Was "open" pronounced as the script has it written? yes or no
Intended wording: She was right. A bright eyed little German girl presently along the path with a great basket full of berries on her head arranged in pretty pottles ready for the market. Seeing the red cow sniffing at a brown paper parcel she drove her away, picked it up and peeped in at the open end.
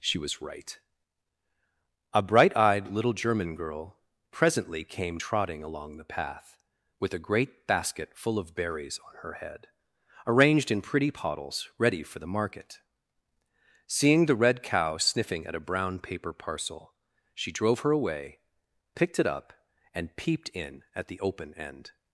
yes